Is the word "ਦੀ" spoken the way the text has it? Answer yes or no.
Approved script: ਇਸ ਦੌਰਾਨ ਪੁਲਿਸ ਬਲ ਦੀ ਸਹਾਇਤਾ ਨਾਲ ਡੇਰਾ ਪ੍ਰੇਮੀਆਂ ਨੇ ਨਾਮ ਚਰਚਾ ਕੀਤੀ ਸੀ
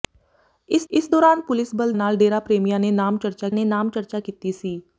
no